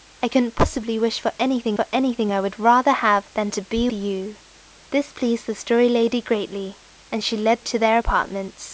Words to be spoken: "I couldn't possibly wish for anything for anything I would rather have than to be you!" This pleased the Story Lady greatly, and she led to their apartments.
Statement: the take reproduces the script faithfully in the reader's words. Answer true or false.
true